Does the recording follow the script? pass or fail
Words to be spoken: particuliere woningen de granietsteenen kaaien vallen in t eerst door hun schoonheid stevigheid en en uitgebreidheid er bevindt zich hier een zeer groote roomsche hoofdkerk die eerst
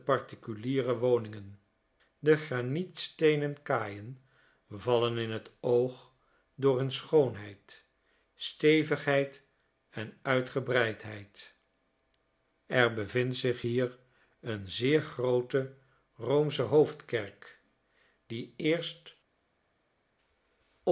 fail